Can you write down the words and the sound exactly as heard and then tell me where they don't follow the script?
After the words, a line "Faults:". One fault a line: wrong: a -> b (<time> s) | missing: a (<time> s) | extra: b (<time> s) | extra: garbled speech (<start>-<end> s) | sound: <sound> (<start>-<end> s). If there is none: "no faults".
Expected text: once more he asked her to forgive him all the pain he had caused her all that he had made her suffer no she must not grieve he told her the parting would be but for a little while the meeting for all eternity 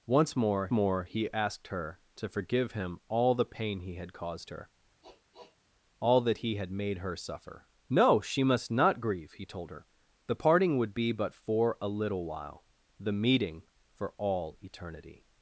once more more he asked her to forgive him all the pain he had caused her all that he had made her suffer no she must not grieve he told her the parting would be but for a little while the meeting for all eternity
Faults:
extra: more (0.7 s)
sound: sniff (5.0-5.6 s)